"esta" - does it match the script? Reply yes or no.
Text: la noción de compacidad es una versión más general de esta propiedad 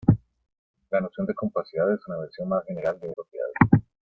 no